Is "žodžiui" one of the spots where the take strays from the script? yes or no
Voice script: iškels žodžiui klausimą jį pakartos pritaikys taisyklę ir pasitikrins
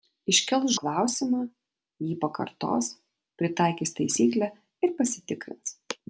yes